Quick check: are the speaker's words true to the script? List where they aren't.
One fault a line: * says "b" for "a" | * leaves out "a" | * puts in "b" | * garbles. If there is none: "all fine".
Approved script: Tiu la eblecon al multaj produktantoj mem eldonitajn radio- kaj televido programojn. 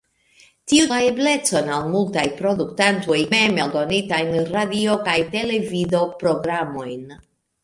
all fine